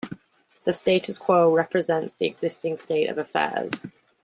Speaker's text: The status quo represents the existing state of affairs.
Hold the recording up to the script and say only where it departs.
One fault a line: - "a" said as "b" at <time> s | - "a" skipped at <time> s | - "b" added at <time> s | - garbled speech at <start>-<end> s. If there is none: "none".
none